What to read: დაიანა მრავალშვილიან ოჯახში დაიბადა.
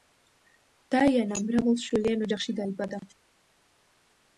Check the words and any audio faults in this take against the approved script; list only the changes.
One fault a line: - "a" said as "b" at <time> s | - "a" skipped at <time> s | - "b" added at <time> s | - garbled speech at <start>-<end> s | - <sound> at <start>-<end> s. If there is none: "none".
none